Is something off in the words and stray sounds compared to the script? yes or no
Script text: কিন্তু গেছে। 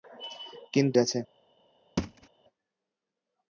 yes